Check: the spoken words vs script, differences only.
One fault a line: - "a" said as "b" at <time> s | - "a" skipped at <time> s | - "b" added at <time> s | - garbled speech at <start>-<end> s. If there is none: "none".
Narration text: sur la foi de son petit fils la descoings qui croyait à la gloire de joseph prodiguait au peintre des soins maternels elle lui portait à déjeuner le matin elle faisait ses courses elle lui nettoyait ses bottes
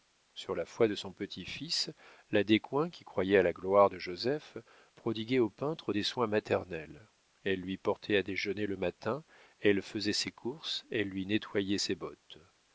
none